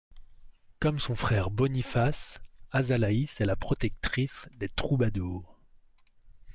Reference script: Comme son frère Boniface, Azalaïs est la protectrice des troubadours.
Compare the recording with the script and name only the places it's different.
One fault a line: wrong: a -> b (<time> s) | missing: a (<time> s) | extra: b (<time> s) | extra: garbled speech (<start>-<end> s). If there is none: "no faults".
no faults